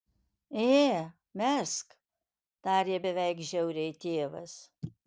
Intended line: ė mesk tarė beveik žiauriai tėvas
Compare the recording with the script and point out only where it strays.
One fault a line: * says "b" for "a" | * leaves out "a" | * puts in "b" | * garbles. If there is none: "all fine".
all fine